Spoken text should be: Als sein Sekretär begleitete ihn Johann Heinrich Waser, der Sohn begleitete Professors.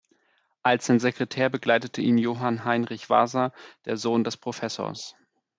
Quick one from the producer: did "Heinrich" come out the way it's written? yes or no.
yes